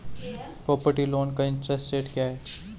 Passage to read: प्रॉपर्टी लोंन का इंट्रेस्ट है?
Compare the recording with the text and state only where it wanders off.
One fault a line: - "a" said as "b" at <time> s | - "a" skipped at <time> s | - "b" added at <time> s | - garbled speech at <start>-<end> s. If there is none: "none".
- "रेट क्या" added at 1.9 s